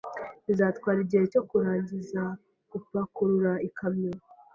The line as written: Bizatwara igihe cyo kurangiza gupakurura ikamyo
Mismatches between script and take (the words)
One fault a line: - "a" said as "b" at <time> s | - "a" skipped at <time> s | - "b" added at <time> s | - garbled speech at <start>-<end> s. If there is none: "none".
none